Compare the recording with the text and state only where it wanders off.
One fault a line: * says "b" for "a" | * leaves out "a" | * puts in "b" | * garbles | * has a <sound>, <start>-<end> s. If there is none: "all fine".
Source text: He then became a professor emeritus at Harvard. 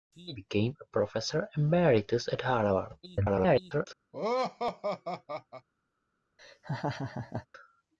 * leaves out "then"
* garbles
* has a laugh, 4.1-5.7 s
* has a laugh, 6.4-7.5 s